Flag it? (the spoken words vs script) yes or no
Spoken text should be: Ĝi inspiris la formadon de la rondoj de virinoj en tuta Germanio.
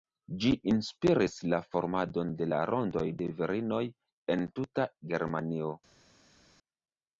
no